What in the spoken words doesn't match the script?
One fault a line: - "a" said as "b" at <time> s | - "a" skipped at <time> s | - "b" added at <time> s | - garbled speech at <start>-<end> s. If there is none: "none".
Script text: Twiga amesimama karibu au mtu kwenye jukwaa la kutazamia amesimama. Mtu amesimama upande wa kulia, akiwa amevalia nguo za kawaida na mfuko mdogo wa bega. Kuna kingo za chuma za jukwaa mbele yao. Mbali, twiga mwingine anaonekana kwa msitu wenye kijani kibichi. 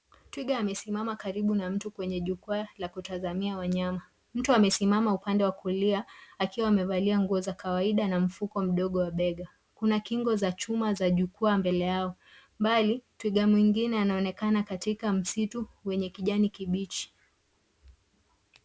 - "au" said as "na" at 1.6 s
- "amesimama" said as "wanyama" at 3.6 s
- "kwa" said as "katika" at 14.6 s